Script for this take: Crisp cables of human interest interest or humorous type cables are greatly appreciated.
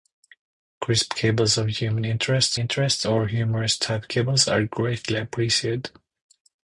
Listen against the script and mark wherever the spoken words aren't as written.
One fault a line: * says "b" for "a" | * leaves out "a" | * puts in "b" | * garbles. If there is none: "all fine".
all fine